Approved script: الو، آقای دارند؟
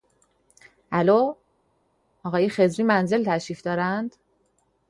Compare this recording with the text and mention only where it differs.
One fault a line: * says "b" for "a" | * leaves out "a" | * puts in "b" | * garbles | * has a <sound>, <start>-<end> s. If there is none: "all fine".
* puts in "خضری منزل تشریف"